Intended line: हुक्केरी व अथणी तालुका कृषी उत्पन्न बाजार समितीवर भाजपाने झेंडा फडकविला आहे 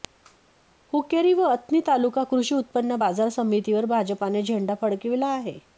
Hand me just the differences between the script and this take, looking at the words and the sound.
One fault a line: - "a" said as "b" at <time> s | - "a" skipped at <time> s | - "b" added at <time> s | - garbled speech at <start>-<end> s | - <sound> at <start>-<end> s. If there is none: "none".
none